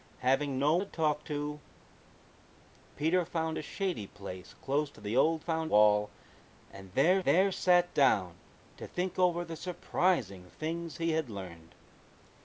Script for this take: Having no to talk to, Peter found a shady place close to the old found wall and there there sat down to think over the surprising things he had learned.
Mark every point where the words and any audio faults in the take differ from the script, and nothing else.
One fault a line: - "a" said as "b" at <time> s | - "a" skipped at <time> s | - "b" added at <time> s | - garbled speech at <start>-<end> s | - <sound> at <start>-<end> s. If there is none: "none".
none